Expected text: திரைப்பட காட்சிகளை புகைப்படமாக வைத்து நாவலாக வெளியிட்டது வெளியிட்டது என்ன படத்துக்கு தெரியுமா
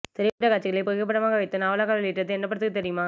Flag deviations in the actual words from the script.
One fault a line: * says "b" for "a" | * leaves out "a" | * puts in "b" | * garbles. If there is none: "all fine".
* leaves out "வெளியிட்டது"